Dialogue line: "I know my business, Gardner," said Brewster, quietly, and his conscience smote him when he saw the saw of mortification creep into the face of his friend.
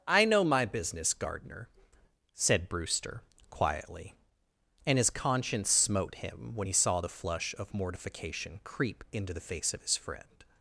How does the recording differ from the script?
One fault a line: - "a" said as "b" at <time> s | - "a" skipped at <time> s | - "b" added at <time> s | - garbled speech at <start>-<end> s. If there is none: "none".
- "saw" said as "flush" at 7.1 s